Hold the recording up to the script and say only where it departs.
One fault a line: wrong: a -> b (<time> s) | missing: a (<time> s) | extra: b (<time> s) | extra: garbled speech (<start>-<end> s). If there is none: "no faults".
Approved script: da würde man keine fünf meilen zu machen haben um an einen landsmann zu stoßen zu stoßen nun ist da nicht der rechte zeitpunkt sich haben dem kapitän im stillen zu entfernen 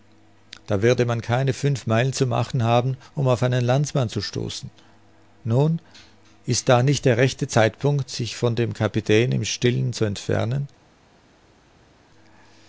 wrong: an -> auf (3.3 s)
missing: zu stoßen (4.7 s)
wrong: haben -> von (8.3 s)